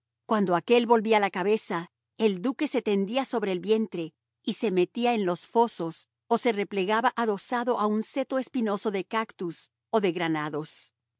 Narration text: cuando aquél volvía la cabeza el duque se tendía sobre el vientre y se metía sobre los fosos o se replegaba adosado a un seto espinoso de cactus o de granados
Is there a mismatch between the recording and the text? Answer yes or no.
yes